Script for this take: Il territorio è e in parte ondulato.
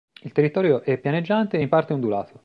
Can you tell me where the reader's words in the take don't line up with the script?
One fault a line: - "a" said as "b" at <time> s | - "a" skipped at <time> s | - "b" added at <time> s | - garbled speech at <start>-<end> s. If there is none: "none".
- "pianeggiante" added at 1.0 s